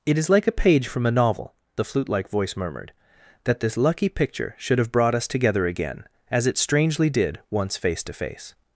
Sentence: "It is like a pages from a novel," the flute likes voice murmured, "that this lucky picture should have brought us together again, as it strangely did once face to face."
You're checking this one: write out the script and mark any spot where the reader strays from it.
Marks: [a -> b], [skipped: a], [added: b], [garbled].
"It is like a [pages -> page] from a novel," the flute [likes -> like] voice murmured, "that this lucky picture should have brought us together again, as it strangely did once face to face."